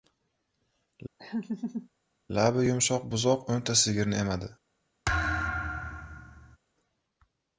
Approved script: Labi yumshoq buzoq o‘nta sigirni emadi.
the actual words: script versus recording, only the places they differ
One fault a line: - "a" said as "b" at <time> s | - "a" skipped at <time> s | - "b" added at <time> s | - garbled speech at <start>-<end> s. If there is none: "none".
none